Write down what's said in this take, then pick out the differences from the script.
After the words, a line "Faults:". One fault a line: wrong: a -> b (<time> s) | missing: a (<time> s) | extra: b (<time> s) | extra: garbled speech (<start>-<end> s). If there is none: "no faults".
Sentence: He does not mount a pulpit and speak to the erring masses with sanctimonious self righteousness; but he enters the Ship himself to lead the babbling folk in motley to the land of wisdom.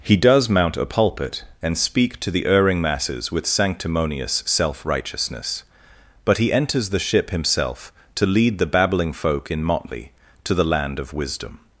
He does mount a pulpit and speak to the erring masses with sanctimonious self righteousness; but he enters the Ship himself to lead the babbling folk in motley to the land of wisdom.
Faults:
missing: not (0.5 s)